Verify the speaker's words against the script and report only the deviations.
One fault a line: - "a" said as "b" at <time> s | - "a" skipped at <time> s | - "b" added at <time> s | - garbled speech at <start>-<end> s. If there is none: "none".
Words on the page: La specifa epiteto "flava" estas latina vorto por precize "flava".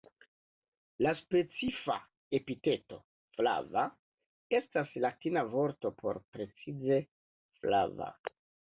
none